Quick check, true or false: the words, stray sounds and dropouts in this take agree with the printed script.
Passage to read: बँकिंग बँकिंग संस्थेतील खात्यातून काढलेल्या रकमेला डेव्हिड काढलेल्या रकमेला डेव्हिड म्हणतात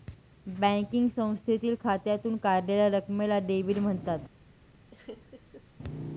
false